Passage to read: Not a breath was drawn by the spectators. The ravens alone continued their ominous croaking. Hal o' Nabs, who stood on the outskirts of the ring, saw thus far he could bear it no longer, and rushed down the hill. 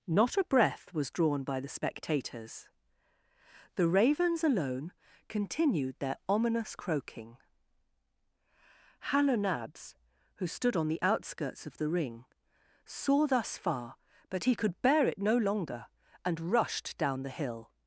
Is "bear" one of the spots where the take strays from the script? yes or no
no